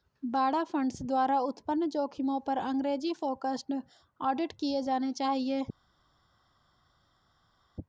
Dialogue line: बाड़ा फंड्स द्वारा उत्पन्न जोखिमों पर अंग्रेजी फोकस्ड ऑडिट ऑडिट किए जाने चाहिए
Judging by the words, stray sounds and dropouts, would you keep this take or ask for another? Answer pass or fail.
fail